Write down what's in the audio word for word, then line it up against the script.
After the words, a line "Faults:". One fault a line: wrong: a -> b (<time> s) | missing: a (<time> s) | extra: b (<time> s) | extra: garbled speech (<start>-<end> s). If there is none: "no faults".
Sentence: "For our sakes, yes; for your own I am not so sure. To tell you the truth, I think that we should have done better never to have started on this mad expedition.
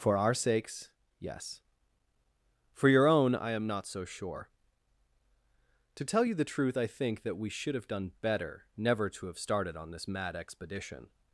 "For our sakes, yes; for your own I am not so sure. To tell you the truth, I think that we should have done better never to have started on this mad expedition.
Faults:
no faults